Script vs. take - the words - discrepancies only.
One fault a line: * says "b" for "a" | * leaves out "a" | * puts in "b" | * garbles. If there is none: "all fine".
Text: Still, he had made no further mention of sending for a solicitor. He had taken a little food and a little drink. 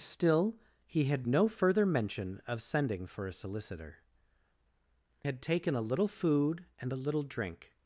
* leaves out "made"
* leaves out "He"